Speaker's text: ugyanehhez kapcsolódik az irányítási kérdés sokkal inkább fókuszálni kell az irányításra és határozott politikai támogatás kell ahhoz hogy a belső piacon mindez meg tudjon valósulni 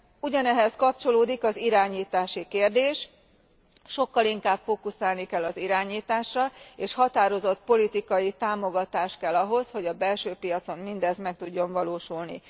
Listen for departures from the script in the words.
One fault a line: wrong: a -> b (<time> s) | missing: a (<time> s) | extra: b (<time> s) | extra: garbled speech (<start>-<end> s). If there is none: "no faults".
no faults